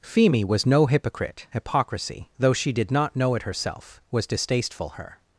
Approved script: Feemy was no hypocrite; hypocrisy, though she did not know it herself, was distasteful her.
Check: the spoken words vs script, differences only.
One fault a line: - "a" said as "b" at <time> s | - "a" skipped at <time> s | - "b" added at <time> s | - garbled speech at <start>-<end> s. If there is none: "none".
none